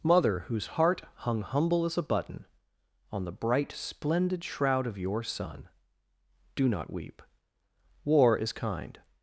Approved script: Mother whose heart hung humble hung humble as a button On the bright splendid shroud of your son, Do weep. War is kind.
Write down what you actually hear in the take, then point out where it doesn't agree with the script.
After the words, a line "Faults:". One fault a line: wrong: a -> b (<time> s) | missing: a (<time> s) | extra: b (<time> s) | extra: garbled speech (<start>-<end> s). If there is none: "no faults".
Mother whose heart hung humble as a button On the bright splendid shroud of your son, Do not weep. War is kind.
Faults:
missing: hung humble (1.9 s)
extra: not (6.7 s)